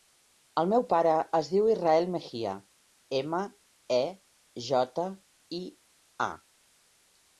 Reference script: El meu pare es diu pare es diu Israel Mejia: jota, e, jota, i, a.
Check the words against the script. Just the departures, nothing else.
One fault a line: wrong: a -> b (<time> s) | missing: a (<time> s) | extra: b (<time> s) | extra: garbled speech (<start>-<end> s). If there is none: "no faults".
missing: pare es diu (1.7 s)
wrong: jota -> ema (3.2 s)